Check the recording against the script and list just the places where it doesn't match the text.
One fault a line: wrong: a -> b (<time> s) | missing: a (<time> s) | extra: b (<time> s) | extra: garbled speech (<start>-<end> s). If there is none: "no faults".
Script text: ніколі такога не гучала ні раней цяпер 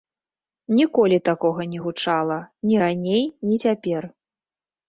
extra: ні (3.4 s)